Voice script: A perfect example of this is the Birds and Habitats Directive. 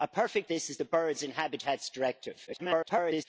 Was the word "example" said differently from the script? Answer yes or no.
yes